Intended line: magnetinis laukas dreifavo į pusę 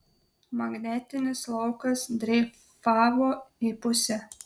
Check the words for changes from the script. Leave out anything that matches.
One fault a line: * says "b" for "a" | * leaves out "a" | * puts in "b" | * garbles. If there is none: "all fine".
all fine